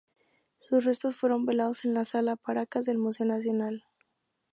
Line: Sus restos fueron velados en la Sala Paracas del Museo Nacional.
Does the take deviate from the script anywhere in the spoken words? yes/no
no